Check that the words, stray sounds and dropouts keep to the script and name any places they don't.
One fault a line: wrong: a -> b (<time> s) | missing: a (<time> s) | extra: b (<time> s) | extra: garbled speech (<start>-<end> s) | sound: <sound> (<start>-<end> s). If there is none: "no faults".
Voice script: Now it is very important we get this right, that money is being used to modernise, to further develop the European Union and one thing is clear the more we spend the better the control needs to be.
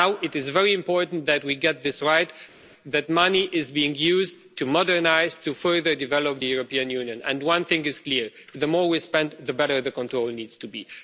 extra: that (1.3 s)